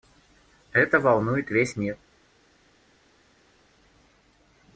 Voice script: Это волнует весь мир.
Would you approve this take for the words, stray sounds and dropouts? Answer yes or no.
yes